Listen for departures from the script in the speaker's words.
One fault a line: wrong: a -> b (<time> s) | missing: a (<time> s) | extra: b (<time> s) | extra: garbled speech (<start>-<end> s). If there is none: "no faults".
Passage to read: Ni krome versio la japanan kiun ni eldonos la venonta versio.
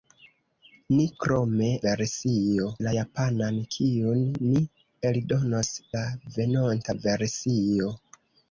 no faults